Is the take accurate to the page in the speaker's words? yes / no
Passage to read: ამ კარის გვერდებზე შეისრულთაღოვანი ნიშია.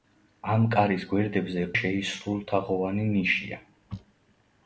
yes